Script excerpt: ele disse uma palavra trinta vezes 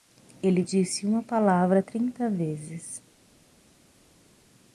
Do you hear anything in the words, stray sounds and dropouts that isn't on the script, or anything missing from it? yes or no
no